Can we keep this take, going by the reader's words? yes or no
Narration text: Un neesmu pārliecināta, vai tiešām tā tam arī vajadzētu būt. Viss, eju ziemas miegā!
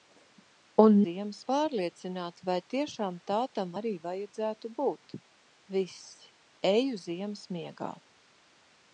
no